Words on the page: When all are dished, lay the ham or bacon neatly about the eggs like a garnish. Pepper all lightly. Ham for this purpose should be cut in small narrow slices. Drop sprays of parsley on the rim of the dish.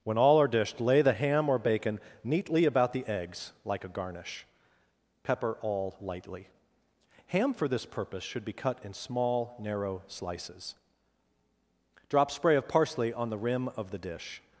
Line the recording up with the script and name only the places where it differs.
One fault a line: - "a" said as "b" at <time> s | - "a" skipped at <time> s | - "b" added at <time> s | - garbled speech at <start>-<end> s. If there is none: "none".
- "sprays" said as "spray" at 12.3 s